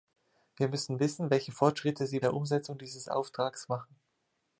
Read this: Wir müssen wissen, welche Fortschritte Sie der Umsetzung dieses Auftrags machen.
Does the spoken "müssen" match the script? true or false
true